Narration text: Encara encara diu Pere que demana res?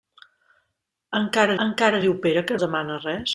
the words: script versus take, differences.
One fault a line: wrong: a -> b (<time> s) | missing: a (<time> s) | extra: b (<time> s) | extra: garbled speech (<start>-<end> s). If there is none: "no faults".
no faults